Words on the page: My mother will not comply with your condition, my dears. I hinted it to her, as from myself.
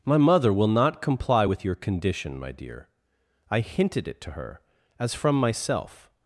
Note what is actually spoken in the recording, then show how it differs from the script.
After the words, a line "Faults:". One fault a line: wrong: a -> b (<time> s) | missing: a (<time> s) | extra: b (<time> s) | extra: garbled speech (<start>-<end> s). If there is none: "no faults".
My mother will not comply with your condition, my dear. I hinted it to her, as from myself.
Faults:
wrong: dears -> dear (2.5 s)